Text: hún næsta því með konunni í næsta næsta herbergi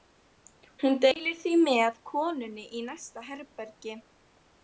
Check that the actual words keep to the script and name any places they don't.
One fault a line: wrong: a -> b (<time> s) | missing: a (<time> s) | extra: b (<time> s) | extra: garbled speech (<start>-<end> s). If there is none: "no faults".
wrong: næsta -> deilir (1.0 s)
missing: næsta (3.2 s)